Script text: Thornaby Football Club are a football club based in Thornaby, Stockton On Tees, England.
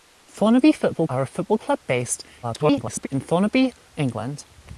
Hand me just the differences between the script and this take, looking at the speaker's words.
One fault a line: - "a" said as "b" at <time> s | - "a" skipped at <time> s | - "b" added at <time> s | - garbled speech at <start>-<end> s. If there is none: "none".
- "Club" skipped at 1.1 s
- garbled speech at 2.4-3.1 s
- "Stockton On Tees" skipped at 3.7 s